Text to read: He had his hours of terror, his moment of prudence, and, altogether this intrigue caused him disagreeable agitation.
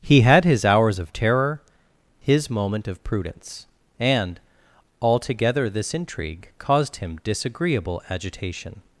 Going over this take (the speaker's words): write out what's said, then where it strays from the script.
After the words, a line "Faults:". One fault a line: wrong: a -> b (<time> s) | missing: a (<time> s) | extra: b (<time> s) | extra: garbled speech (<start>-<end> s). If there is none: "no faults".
He had his hours of terror, his moment of prudence, and, altogether this intrigue caused him disagreeable agitation.
Faults:
no faults